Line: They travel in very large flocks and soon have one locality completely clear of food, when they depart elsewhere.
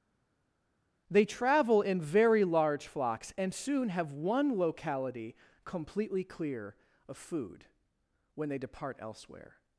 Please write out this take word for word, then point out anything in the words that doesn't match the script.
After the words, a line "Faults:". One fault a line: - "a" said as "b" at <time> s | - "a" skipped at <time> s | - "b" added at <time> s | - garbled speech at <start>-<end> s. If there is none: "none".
They travel in very large flocks and soon have one locality completely clear of food, when they depart elsewhere.
Faults:
none